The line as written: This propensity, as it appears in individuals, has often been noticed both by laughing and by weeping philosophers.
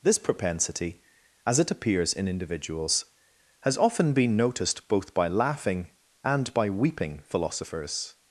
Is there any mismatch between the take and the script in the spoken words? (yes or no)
no